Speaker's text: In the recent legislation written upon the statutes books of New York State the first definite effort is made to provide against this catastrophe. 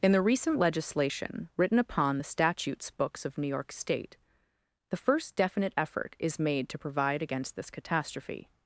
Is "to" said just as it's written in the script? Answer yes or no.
yes